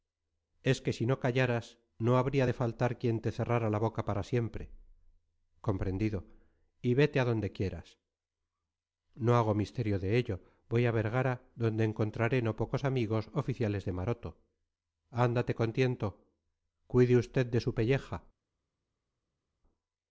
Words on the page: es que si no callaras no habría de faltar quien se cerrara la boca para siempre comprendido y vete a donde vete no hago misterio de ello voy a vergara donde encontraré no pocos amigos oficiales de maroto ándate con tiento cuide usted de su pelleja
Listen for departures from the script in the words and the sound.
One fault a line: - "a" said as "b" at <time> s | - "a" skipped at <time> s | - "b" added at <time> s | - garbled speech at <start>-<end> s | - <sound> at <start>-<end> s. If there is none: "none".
- "se" said as "te" at 3.2 s
- "vete" said as "quieras" at 7.5 s